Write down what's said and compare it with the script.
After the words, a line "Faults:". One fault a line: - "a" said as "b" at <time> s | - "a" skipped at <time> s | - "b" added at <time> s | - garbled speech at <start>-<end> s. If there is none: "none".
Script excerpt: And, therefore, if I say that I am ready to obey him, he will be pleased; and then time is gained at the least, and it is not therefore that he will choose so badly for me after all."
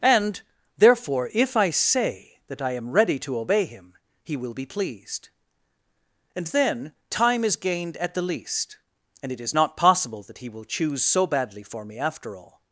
And, therefore, if I say that I am ready to obey him, he will be pleased; and then time is gained at the least, and it is not possible that he will choose so badly for me after all."
Faults:
- "therefore" said as "possible" at 9.8 s